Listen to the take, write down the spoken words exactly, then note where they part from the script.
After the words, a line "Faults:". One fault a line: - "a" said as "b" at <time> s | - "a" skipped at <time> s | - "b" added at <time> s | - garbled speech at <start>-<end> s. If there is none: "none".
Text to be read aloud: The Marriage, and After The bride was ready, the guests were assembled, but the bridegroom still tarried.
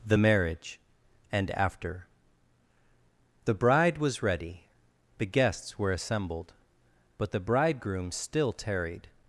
The Marriage, and After The bride was ready, the guests were assembled, but the bridegroom still tarried.
Faults:
none